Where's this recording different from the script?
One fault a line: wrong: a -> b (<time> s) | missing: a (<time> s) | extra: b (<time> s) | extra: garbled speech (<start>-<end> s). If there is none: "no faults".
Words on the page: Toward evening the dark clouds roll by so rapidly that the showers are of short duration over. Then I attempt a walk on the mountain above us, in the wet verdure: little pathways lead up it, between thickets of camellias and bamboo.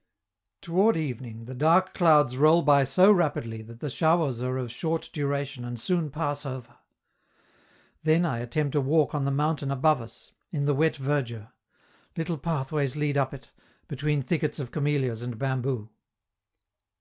extra: and soon pass (5.6 s)